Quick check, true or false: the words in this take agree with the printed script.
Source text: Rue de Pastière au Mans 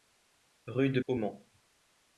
false